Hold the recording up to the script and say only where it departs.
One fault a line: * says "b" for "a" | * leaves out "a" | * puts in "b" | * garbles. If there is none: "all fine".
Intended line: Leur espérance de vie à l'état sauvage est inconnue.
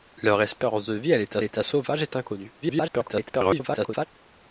* puts in "l'état"
* garbles